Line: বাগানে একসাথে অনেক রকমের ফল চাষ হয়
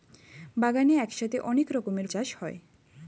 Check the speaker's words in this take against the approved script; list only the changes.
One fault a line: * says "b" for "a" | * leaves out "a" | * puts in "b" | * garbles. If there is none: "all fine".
* leaves out "ফল"